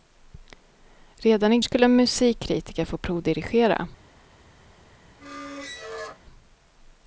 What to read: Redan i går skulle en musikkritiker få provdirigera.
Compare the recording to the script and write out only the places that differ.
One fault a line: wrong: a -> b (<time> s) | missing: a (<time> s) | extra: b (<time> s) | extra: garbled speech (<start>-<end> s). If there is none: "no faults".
missing: går (1.6 s)